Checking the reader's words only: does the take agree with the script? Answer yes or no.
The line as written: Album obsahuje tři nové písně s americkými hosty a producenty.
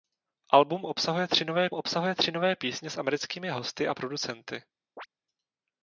no